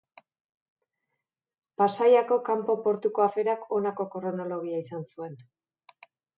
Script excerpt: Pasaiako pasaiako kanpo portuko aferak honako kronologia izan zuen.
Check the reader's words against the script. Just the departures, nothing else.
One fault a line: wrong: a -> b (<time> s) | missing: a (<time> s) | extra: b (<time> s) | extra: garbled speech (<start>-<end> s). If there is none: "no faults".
missing: pasaiako (2.4 s)